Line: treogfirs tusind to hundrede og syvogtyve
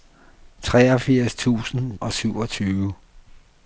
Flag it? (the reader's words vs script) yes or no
yes